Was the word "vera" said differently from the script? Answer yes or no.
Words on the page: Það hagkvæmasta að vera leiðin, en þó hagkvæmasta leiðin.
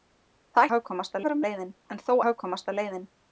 no